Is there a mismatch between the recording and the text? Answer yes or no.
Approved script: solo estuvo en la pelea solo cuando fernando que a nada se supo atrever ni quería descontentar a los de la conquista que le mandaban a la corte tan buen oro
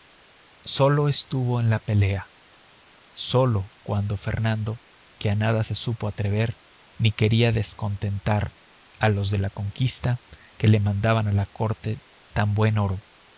no